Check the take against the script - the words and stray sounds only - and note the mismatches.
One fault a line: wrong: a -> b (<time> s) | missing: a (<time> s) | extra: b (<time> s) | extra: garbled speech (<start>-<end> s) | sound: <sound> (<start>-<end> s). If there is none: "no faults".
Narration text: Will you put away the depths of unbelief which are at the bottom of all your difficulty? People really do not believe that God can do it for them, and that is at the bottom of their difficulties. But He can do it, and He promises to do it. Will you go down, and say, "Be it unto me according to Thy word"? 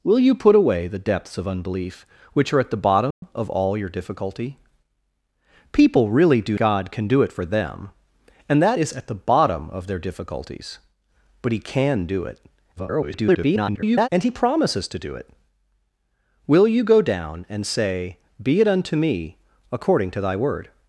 sound: dropout (3.1-3.2 s)
missing: not believe that (6.6 s)
extra: garbled speech (12.8-14.1 s)